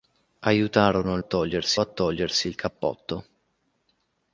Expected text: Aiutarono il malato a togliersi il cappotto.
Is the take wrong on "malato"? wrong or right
wrong